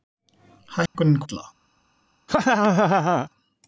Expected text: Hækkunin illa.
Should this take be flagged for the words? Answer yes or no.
no